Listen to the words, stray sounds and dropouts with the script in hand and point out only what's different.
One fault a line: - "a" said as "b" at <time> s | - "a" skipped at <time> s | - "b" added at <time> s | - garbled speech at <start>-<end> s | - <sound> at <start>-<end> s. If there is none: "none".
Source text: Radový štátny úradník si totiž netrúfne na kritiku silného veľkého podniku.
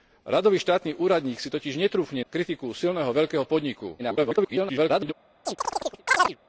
- "na" skipped at 2.2 s
- garbled speech at 4.0-5.1 s
- chirp at 5.5-6.4 s